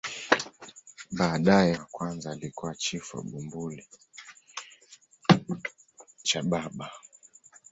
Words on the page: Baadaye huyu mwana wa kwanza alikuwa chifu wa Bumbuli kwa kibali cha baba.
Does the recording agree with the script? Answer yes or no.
no